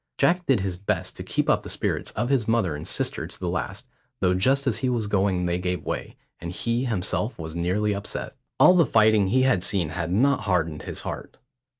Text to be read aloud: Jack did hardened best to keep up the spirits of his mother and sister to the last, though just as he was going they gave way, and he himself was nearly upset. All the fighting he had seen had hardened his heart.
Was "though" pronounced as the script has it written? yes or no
yes